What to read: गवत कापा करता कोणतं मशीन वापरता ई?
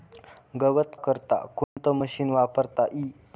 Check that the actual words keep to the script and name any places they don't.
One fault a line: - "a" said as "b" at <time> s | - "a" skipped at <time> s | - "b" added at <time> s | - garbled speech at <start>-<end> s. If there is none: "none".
- "कापा" skipped at 0.9 s